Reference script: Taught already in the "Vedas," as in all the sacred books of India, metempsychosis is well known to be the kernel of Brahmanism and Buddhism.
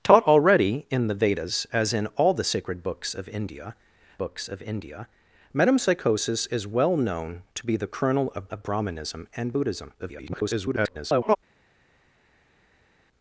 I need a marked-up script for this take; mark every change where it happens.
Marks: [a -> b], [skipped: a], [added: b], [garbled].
Taught already in the "Vedas," as in all the sacred books of India, [added: books of India] metempsychosis is well known to be the kernel of [added: of] Brahmanism and Buddhism. [garbled]